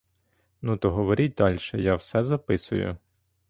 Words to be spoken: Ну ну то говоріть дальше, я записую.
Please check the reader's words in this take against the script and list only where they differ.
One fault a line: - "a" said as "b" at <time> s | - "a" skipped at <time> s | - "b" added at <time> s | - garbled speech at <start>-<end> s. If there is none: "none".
- "ну" skipped at 0.8 s
- "все" added at 2.0 s